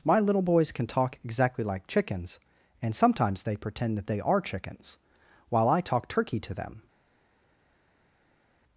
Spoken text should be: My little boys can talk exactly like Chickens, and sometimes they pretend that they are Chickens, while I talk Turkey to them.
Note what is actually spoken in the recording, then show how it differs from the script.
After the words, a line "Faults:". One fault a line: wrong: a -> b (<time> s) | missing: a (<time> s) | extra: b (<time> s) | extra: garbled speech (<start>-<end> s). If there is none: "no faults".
My little boys can talk exactly like Chickens, and sometimes they pretend that they are Chickens, while I talk Turkey to them.
Faults:
no faults